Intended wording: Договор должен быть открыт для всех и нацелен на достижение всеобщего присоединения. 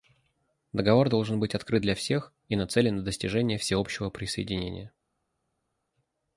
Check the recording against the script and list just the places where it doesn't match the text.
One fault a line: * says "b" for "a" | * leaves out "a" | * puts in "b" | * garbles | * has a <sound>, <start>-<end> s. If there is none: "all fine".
all fine